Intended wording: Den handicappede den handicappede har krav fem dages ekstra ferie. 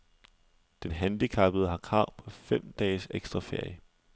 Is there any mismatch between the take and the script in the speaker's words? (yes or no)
yes